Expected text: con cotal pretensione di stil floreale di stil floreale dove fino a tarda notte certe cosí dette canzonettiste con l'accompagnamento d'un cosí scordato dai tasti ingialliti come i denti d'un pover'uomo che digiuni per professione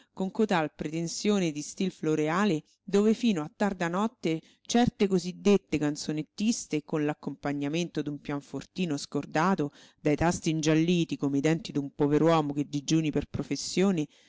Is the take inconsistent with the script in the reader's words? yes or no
yes